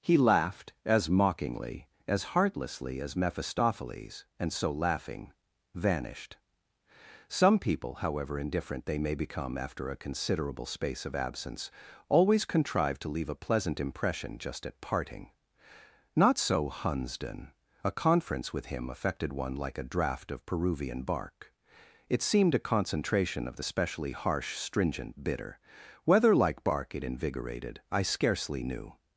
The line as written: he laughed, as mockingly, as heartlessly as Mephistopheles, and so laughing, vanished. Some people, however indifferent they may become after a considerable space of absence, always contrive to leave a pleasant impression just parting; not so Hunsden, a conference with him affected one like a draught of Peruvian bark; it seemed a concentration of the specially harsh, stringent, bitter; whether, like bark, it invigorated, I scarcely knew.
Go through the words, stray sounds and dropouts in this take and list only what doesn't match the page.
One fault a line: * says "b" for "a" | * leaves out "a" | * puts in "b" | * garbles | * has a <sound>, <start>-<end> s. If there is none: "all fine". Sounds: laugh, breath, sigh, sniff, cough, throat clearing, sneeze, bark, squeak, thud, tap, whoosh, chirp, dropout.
* puts in "at"